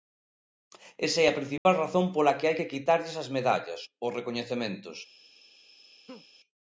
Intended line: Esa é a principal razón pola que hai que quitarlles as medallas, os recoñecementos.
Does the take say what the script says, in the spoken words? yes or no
yes